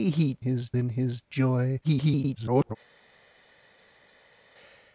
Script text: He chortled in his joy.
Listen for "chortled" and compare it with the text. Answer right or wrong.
wrong